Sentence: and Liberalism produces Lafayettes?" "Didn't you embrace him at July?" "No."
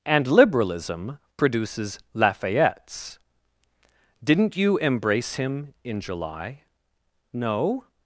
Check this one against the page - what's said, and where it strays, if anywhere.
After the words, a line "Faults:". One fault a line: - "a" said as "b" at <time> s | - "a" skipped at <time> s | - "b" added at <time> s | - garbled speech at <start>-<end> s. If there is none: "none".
and Liberalism produces Lafayettes?" "Didn't you embrace him in July?" "No."
Faults:
- "at" said as "in" at 5.8 s